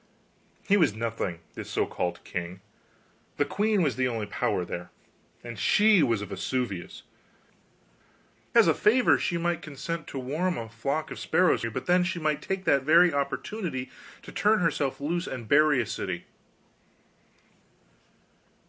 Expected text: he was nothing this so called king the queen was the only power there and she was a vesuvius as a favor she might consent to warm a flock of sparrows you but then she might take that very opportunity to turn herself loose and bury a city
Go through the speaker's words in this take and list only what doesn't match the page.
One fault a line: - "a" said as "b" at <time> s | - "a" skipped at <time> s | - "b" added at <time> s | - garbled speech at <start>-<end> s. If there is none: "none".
none